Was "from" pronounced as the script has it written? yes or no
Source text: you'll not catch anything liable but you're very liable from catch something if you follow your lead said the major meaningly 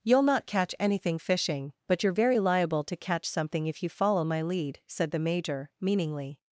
no